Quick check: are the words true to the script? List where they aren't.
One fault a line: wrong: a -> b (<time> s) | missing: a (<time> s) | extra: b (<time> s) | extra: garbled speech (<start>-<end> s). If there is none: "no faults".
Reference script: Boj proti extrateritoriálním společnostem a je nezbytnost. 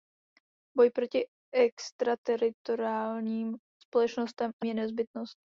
no faults